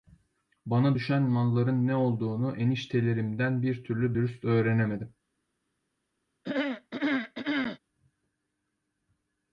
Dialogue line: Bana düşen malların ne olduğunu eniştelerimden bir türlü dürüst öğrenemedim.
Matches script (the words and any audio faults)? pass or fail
fail